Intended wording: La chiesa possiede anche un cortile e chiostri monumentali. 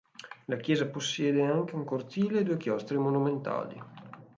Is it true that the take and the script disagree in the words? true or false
true